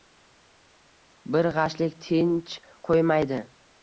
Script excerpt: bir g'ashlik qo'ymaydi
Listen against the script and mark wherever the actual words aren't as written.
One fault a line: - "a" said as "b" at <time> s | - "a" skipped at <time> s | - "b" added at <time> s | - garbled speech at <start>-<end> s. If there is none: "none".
- "tinch" added at 2.0 s